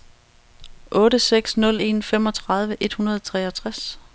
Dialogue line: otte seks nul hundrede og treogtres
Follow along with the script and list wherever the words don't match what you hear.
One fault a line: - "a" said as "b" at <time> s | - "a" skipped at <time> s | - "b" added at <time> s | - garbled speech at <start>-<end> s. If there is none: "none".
- "en femogtredive et" added at 1.8 s